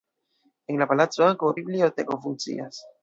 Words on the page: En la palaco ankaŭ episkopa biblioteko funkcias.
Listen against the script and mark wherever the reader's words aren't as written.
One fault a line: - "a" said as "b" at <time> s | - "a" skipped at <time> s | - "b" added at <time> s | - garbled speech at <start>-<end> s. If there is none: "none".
- "episkopa" skipped at 1.5 s